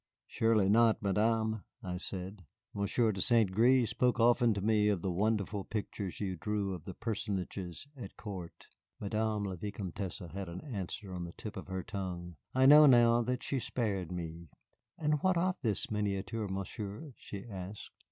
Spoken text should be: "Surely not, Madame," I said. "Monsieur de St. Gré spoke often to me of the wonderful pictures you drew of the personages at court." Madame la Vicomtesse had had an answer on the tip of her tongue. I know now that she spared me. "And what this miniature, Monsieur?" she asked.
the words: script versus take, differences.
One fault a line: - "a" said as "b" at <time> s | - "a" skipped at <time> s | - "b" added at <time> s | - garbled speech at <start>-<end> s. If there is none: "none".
- "had" skipped at 10.5 s
- "of" added at 15.4 s